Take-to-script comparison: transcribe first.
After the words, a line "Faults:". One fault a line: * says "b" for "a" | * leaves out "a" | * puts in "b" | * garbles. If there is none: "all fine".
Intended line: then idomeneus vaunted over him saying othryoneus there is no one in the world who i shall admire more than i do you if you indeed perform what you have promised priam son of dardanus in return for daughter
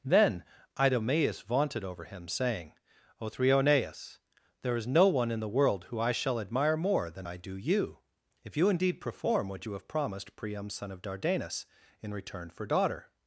then idomeneus vaunted over him saying othryoneus there is no one in the world who i shall admire more than i do you if you indeed perform what you have promised priam son of dardanus in return for daughter
Faults:
all fine